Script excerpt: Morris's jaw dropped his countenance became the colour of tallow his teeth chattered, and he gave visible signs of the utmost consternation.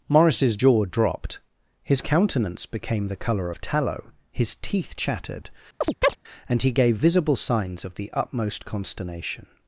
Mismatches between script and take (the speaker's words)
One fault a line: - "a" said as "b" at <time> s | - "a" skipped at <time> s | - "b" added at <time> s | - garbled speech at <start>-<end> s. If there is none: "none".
none